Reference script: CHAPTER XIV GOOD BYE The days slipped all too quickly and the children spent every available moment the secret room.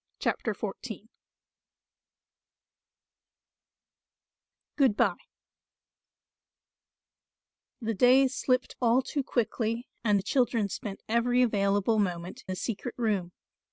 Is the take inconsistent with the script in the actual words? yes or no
no